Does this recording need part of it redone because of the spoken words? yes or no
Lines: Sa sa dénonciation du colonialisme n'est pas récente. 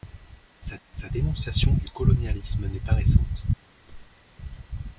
no